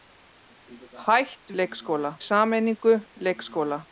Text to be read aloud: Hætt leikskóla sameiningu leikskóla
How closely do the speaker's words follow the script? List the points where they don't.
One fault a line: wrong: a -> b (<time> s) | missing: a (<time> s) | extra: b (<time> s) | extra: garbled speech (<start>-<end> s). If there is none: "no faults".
no faults